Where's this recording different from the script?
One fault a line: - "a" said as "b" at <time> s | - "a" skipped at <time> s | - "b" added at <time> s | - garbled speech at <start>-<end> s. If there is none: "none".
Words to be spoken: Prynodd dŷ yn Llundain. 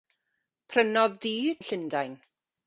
none